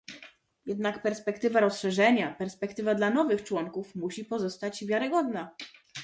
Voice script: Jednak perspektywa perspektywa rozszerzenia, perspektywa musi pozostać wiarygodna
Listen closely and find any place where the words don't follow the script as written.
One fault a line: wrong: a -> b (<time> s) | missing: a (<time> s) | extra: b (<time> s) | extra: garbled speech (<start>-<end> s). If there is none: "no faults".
extra: rozszerzenia (1.6 s)
wrong: rozszerzenia perspektywa -> dla nowych członków (3.0 s)